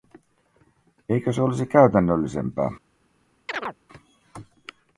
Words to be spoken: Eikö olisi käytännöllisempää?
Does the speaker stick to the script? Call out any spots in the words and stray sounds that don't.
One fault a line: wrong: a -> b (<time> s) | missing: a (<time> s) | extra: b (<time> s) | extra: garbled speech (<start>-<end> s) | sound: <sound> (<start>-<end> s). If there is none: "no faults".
extra: se (1.3 s)
sound: chirp (3.5-3.8 s)